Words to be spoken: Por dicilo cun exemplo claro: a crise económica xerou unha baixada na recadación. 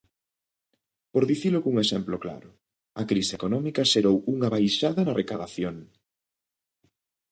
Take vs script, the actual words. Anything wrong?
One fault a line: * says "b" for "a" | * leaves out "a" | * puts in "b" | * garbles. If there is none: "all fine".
all fine